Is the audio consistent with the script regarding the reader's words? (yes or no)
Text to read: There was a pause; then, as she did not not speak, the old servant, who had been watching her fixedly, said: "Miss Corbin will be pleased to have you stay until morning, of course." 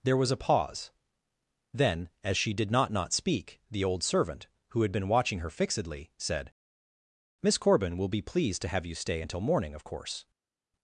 yes